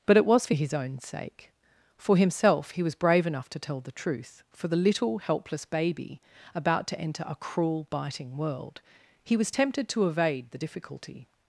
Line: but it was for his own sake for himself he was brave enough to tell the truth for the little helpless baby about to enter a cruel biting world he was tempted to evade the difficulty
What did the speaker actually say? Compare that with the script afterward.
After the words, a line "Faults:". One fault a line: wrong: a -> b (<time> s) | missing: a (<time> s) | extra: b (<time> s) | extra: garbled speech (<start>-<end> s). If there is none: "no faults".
but it was for his own sake for himself he was brave enough to tell the truth for the little helpless baby about to enter a cruel biting world he was tempted to evade the difficulty
Faults:
no faults